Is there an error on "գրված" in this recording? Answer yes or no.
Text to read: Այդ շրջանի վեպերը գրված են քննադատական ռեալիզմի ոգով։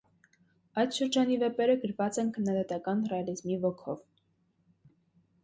no